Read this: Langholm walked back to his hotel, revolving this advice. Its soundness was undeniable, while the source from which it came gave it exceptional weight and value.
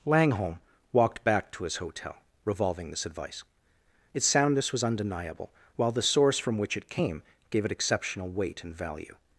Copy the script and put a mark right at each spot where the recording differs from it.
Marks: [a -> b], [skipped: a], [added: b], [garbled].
Langholm walked back to his hotel, revolving this advice. Its soundness was undeniable, while the source from which it came gave it exceptional weight and value.